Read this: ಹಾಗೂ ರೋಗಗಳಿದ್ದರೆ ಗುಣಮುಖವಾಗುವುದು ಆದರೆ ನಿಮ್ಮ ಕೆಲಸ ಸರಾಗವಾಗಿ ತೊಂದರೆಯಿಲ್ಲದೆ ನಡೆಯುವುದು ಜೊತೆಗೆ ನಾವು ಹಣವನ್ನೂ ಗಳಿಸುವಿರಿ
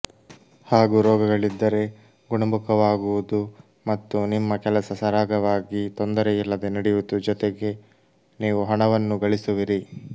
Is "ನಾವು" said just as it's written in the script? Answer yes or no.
no